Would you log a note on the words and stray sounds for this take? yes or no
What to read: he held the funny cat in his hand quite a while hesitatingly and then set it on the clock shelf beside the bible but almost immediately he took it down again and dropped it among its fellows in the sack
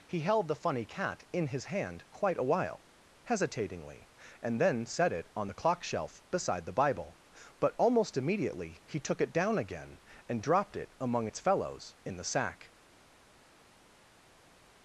no